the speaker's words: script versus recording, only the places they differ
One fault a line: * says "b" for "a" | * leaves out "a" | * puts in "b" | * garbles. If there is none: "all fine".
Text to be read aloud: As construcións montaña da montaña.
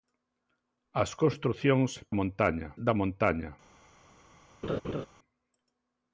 all fine